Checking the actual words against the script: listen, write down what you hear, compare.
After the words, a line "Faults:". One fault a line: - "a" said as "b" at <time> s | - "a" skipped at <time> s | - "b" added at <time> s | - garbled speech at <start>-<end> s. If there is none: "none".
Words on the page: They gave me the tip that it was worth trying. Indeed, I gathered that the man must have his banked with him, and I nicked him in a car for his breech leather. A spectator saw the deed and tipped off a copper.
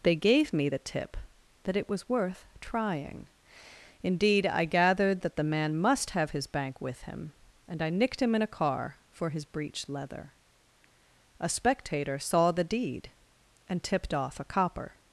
They gave me the tip that it was worth trying. Indeed, I gathered that the man must have his bank with him, and I nicked him in a car for his breech leather. A spectator saw the deed and tipped off a copper.
Faults:
- "banked" said as "bank" at 6.5 s